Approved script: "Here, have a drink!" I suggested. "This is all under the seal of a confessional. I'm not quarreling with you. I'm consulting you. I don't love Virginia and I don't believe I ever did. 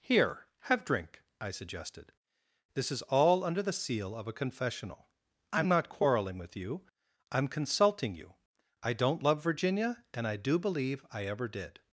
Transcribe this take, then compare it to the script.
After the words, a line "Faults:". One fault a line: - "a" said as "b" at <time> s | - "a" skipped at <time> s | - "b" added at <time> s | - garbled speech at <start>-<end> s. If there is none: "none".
"Here, have drink!" I suggested. "This is all under the seal of a confessional. I'm not quarreling with you. I'm consulting you. I don't love Virginia and I do believe I ever did.
Faults:
- "a" skipped at 0.8 s
- "don't" said as "do" at 10.4 s